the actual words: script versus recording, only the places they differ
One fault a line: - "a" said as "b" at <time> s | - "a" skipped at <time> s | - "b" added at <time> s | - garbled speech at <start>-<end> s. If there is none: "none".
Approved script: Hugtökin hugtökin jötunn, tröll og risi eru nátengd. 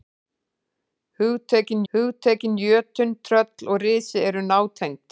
none